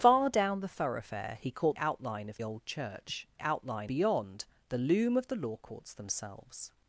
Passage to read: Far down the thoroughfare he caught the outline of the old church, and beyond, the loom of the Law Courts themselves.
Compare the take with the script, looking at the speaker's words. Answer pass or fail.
fail